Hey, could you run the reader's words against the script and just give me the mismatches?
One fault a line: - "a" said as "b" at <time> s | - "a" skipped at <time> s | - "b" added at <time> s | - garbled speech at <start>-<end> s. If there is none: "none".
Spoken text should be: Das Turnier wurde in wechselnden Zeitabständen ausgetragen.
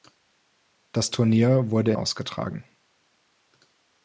- "in wechselnden Zeitabständen" skipped at 1.9 s